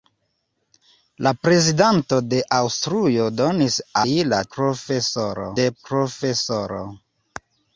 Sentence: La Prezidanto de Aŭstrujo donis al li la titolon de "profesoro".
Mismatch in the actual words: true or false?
true